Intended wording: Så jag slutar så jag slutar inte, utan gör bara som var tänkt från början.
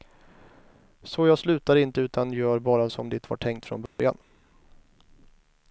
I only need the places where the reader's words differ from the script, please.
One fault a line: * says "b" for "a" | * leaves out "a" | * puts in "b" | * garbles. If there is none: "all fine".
* leaves out "så jag slutar"
* puts in "det"